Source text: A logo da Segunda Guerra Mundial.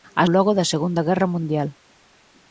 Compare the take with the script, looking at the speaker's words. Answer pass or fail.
pass